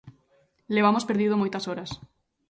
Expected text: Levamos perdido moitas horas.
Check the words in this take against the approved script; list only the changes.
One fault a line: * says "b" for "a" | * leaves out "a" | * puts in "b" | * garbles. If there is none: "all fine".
all fine